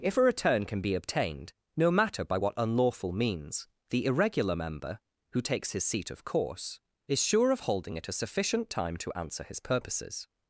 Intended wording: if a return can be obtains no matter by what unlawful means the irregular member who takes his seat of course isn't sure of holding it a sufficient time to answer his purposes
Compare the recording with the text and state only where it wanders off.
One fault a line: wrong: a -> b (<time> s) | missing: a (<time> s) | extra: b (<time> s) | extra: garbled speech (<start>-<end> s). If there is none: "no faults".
wrong: obtains -> obtained (0.9 s)
wrong: isn't -> is (7.1 s)